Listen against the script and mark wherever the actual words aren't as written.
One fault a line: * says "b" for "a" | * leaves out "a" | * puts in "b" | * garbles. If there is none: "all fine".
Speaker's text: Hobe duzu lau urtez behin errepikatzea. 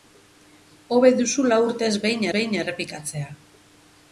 * puts in "behin"